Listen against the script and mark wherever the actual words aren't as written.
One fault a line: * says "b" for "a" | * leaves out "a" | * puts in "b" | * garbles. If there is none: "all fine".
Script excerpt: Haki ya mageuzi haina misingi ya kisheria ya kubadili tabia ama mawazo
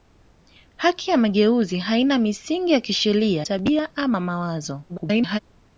* leaves out "ya kubadili"
* garbles